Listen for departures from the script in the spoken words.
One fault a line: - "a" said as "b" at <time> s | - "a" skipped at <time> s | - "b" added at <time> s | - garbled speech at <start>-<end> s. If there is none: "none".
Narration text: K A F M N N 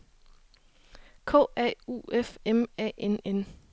- "U" added at 1.9 s
- "A" added at 2.8 s